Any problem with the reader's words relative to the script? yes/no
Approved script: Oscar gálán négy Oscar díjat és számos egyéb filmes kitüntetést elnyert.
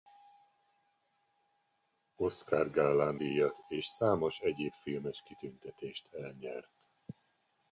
yes